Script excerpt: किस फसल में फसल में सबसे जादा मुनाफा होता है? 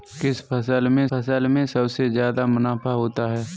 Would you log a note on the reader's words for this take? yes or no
no